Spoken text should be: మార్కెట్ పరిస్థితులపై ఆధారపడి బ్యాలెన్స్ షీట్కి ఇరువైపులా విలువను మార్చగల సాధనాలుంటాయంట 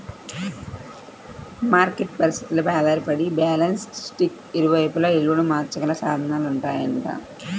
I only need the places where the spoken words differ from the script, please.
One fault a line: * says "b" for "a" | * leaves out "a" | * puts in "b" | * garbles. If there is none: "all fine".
all fine